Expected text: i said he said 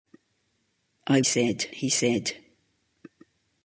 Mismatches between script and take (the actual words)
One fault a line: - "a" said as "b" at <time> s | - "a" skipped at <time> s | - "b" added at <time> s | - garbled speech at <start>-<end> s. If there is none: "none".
none